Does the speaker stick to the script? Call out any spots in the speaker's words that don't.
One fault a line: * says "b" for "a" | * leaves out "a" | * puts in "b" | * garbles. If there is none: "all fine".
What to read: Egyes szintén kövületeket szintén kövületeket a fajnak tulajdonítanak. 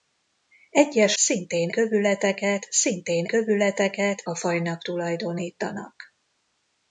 all fine